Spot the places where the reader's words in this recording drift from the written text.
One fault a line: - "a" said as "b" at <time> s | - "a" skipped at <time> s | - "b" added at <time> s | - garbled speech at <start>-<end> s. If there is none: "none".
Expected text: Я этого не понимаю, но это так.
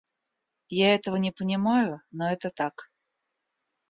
none